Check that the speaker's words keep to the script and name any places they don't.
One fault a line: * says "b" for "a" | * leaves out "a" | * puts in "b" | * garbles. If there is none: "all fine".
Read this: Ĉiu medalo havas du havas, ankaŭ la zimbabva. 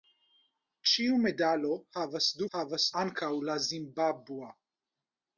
all fine